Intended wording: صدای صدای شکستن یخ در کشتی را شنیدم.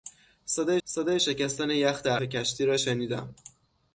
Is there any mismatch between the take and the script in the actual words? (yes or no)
no